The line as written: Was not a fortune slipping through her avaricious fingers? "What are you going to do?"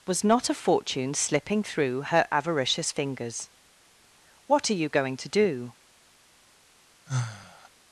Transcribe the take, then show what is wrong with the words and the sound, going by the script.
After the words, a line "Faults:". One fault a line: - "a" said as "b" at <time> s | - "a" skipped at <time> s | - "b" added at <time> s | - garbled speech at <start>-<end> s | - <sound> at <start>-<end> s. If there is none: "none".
Was not a fortune slipping through her avaricious fingers? "What are you going to do?"
Faults:
- sigh at 7.1-7.7 s